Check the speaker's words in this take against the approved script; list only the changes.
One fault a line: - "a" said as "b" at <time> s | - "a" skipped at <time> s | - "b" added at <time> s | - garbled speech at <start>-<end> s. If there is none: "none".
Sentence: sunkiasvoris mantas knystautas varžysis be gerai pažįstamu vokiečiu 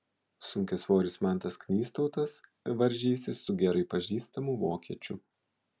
- "be" said as "su" at 3.5 s